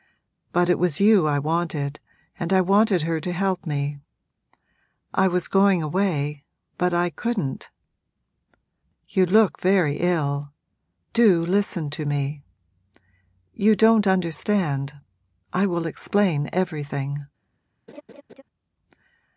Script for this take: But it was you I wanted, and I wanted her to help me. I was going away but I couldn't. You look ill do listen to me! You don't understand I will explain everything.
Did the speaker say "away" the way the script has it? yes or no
yes